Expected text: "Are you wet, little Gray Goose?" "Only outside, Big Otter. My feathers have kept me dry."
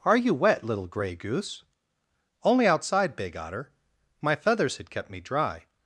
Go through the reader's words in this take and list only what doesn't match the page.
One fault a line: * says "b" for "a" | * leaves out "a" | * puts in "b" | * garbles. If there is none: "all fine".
* says "had" for "have"